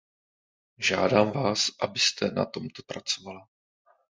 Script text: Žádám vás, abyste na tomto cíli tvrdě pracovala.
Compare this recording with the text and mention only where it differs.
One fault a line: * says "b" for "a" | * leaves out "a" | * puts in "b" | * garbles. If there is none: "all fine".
* leaves out "cíli tvrdě"